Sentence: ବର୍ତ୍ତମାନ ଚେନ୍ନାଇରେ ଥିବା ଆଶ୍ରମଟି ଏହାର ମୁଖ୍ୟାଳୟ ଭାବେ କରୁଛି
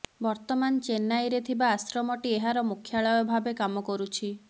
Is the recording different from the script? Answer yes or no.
yes